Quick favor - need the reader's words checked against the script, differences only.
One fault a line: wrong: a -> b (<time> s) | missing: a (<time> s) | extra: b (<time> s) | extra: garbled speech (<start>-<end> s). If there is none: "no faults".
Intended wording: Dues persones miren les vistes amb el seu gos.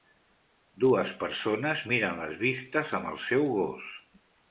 no faults